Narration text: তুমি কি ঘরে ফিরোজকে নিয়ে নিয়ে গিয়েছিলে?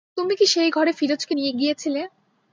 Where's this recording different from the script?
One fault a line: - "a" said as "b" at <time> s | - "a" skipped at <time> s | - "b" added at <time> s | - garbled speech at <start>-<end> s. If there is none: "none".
- "সেই" added at 0.5 s
- "নিয়ে" skipped at 1.5 s